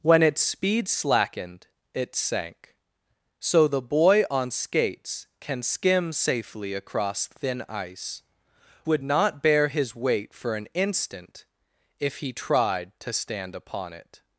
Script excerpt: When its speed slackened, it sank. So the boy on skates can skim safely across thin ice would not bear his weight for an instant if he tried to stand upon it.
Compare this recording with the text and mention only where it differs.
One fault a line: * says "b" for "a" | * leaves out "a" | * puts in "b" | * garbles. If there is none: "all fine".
all fine